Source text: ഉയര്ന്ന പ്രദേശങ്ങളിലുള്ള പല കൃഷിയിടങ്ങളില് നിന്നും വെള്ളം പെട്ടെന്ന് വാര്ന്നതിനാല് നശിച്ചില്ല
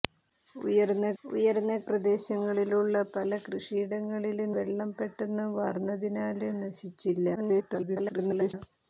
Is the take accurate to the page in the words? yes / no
no